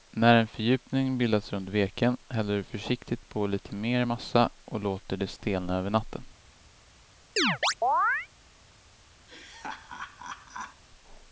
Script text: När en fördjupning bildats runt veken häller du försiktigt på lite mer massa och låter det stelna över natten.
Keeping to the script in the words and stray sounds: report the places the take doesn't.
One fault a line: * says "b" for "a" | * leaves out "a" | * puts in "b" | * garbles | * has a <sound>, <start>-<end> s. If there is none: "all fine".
* has a chirp, 7.4-8.3 s
* has a laugh, 9.3-10.8 s